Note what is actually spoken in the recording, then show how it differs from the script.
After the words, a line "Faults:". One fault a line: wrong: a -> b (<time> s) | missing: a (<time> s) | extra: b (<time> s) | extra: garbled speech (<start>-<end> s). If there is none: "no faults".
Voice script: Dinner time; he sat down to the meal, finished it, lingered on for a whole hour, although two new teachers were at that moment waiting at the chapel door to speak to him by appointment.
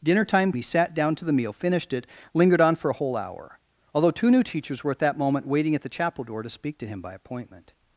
Dinner time; he sat down to the meal, finished it, lingered on for a whole hour, although two new teachers were at that moment waiting at the chapel door to speak to him by appointment.
Faults:
no faults